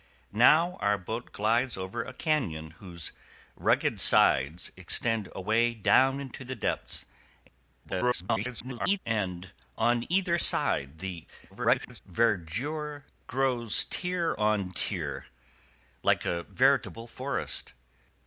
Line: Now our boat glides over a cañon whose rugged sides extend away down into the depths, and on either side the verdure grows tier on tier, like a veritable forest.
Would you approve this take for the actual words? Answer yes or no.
no